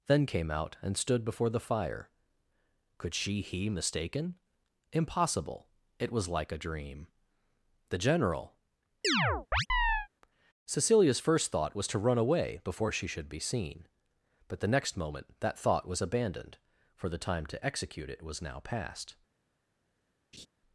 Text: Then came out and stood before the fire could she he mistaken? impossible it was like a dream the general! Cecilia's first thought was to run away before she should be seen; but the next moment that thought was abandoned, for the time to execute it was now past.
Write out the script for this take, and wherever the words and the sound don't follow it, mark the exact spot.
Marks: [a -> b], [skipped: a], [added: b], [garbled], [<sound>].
Then came out and stood before the fire could she he mistaken? impossible it was like a dream the general! [chirp] Cecilia's first thought was to run away before she should be seen; but the next moment that thought was abandoned, for the time to execute it was now past. [laugh]